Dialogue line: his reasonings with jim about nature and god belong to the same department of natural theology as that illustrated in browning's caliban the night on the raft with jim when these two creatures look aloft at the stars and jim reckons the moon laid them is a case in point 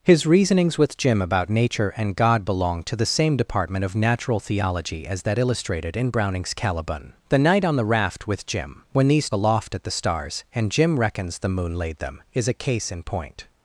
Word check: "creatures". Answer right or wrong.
wrong